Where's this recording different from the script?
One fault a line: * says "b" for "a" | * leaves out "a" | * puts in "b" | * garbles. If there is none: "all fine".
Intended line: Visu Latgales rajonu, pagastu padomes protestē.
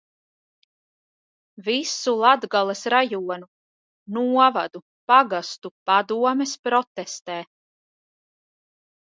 * puts in "novadu"